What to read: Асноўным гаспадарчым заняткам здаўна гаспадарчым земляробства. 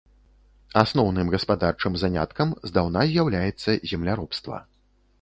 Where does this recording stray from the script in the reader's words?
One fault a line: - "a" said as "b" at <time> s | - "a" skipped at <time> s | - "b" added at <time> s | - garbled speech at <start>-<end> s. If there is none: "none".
- "гаспадарчым" said as "з'яўляецца" at 3.1 s